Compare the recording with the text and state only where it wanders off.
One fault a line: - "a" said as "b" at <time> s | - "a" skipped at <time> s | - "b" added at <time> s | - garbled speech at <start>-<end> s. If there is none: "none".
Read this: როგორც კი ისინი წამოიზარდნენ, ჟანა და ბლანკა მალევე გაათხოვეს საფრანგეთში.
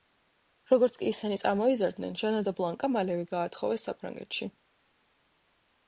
none